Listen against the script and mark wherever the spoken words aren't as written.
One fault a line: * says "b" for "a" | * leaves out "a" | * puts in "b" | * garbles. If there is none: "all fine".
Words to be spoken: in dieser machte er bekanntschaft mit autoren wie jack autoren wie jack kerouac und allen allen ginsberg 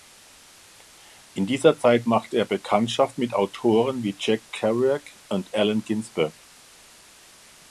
* puts in "zeit"
* leaves out "autoren wie jack"
* leaves out "allen"